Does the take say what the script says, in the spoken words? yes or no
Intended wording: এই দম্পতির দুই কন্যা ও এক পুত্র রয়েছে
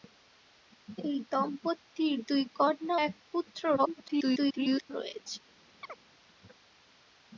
no